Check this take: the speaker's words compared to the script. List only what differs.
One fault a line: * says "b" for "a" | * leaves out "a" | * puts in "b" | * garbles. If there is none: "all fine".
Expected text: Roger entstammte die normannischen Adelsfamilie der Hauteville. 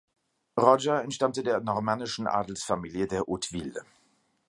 * says "der" for "die"